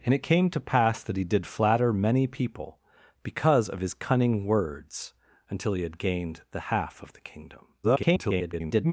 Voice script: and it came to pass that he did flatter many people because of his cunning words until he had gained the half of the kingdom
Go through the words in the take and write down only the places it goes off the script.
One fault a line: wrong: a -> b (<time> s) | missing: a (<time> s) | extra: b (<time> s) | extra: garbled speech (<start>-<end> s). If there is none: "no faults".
extra: garbled speech (7.8-8.9 s)